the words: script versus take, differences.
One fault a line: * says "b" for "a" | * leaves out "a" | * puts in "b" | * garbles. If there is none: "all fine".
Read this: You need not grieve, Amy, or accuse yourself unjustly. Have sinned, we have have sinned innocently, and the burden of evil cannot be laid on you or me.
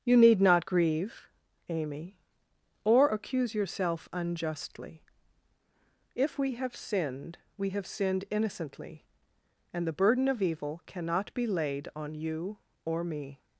* puts in "If we"
* leaves out "have"